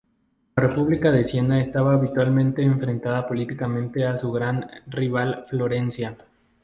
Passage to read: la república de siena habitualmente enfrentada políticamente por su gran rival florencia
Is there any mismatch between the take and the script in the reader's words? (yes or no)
yes